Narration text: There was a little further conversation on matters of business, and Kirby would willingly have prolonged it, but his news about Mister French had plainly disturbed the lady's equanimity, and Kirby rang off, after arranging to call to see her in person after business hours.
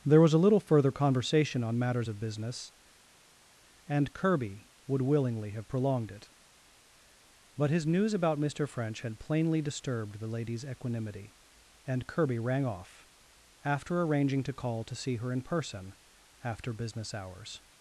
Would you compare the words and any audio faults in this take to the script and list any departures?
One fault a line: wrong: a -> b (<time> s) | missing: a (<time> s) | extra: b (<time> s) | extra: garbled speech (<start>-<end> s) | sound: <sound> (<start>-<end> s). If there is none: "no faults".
no faults